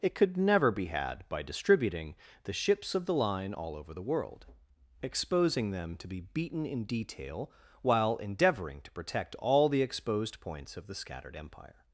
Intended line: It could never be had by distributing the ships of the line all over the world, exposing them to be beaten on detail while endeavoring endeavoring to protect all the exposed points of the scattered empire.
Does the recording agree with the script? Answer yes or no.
no